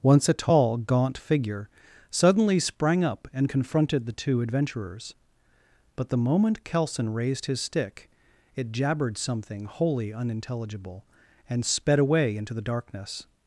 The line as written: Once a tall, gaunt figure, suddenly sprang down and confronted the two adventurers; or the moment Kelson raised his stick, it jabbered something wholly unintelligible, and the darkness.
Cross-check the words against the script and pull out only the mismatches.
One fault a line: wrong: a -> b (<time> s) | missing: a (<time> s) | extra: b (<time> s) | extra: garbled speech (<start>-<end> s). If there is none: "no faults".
wrong: down -> up (3.0 s)
wrong: or -> but (6.0 s)
extra: sped away into (11.6 s)